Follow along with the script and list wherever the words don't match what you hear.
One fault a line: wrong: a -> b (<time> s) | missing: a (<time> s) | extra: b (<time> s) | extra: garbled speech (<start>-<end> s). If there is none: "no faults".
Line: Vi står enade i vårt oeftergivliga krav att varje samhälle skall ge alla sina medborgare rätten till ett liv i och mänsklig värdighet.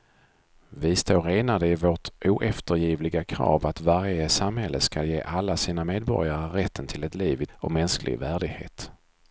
no faults